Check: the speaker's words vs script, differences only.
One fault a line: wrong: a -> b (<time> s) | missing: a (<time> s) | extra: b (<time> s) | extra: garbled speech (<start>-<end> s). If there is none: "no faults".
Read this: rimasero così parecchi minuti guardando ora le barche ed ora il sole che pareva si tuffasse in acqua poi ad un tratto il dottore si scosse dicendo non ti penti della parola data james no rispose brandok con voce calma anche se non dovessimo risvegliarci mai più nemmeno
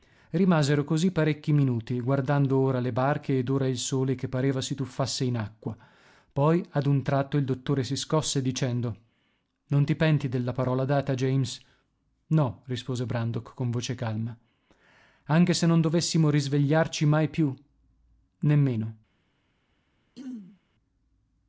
no faults